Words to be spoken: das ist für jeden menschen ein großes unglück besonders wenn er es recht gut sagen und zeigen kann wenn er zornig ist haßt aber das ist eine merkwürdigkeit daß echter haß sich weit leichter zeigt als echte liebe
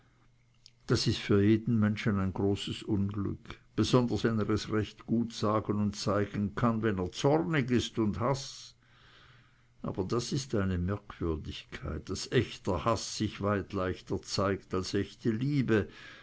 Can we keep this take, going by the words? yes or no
no